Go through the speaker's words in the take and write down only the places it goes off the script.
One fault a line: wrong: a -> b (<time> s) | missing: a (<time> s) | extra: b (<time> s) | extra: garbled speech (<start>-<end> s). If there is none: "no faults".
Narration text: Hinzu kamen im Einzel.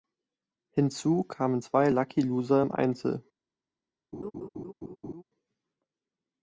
extra: zwei Lucky Loser (1.6 s)